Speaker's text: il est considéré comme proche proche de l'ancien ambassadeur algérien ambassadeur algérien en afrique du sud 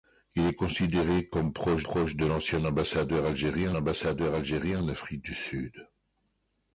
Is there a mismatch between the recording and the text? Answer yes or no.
no